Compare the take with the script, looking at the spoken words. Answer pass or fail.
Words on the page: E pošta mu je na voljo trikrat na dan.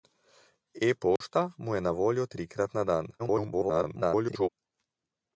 fail